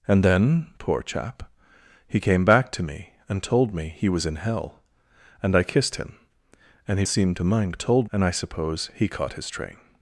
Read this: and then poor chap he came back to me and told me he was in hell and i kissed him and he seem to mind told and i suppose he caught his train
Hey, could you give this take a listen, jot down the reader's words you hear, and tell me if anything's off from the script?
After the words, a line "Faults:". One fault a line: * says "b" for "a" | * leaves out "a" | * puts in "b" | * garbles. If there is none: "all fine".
and then poor chap he came back to me and told me he was in hell and i kissed him and he seem to mind told and i suppose he caught his train
Faults:
all fine